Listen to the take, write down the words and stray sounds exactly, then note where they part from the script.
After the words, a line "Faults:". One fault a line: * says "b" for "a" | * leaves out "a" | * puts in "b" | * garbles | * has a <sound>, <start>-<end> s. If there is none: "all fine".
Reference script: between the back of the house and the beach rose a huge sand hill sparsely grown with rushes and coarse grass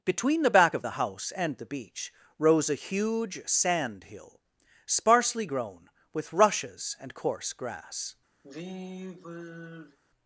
between the back of the house and the beach rose a huge sand hill sparsely grown with rushes and coarse grass
Faults:
* has a sigh, 8.4-10.0 s